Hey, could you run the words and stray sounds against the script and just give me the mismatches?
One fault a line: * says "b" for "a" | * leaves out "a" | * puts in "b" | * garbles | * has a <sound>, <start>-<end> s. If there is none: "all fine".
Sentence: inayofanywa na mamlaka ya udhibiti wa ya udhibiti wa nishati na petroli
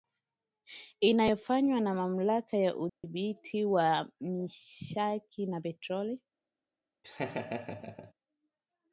* has a dropout, 2.9-3.0 s
* leaves out "ya udhibiti wa"
* has a laugh, 7.0-8.1 s